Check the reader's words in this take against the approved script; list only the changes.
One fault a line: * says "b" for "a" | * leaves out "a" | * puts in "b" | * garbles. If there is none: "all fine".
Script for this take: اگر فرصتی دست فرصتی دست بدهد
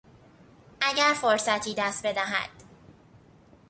* leaves out "فرصتی دست"